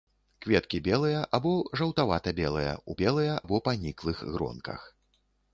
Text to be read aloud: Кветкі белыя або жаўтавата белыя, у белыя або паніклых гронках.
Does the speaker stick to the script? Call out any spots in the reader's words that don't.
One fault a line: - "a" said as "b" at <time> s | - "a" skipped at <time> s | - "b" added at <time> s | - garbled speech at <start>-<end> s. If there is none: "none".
none